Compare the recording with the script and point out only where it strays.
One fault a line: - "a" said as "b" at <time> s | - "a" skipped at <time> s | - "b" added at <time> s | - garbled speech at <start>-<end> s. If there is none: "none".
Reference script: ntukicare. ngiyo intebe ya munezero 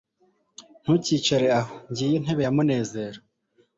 - "aho" added at 1.6 s